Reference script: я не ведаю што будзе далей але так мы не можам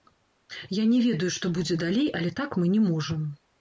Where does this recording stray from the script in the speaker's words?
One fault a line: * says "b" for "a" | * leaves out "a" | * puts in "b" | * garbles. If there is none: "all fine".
all fine